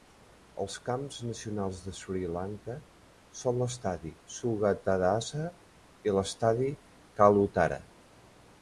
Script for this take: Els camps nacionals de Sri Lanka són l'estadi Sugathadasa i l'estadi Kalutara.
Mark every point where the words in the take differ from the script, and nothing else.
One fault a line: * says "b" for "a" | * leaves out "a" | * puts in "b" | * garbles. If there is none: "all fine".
all fine